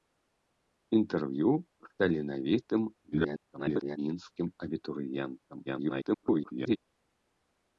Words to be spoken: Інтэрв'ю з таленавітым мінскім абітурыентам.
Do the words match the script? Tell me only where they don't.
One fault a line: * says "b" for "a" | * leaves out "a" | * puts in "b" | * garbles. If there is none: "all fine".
* garbles
* garbles